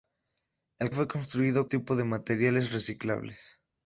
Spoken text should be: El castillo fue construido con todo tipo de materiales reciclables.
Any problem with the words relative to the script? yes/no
yes